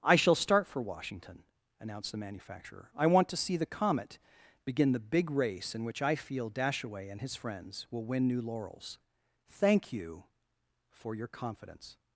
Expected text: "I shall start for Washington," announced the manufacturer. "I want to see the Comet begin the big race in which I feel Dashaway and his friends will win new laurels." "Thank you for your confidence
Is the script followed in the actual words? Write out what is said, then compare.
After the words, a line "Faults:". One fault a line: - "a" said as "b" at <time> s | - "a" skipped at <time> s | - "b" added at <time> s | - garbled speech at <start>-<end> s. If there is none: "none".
"I shall start for Washington," announced the manufacturer. "I want to see the Comet begin the big race in which I feel Dashaway and his friends will win new laurels." "Thank you for your confidence
Faults:
none